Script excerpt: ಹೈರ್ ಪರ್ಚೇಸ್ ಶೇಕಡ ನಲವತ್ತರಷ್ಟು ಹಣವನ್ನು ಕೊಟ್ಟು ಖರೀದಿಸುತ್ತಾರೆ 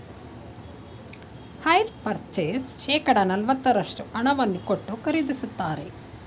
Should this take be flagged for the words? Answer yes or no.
no